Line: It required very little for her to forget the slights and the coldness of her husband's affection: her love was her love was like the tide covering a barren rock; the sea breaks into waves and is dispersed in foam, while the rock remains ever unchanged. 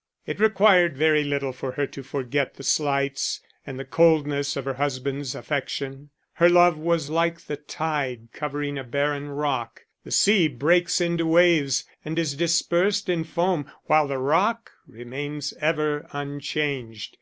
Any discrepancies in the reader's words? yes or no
yes